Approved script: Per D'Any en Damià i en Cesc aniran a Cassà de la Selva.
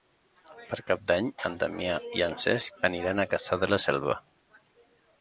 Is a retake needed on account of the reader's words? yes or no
yes